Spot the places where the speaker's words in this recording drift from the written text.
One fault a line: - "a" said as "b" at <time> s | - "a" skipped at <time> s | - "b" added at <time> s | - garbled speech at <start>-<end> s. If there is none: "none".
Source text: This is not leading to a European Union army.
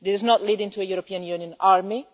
none